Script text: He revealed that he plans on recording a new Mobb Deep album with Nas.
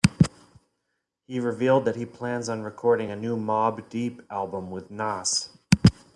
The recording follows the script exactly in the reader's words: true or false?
true